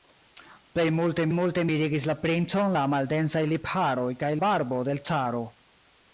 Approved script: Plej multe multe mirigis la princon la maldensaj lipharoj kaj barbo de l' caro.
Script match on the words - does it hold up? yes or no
yes